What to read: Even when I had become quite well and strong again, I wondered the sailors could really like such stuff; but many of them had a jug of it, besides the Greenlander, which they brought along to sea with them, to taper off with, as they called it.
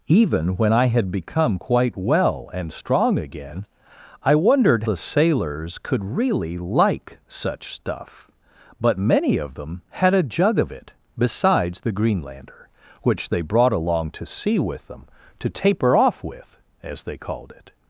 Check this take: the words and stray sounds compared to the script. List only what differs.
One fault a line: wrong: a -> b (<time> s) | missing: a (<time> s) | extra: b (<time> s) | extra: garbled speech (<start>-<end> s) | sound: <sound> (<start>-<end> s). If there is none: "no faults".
no faults